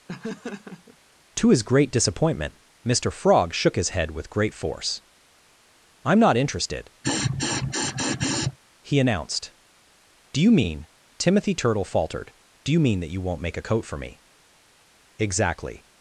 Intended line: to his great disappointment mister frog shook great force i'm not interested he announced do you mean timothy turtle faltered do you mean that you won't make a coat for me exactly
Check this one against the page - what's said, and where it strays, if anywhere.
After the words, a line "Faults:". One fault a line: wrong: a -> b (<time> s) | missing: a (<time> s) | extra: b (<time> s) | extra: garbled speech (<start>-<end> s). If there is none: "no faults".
to his great disappointment mister frog shook his head with great force i'm not interested he announced do you mean timothy turtle faltered do you mean that you won't make a coat for me exactly
Faults:
extra: his head with (3.7 s)